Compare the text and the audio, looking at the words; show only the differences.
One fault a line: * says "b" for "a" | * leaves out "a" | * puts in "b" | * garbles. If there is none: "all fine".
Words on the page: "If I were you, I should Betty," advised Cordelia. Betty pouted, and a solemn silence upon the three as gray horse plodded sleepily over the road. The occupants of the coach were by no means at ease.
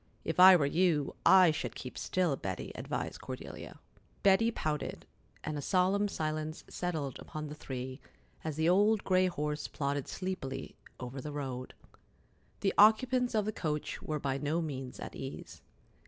* puts in "keep still"
* puts in "settled"
* puts in "the old"